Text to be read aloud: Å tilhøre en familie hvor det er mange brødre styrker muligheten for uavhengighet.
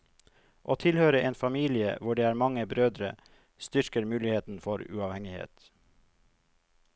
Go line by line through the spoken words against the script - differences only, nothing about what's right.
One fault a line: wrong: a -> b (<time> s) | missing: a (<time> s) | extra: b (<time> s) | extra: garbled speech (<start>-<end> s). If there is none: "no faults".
no faults